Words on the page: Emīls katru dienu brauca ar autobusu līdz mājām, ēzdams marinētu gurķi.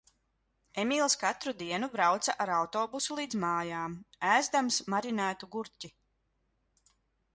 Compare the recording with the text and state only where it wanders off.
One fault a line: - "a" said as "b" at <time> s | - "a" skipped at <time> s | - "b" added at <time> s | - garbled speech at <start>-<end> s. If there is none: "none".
none